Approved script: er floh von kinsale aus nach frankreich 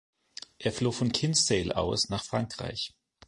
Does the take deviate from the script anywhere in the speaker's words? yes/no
no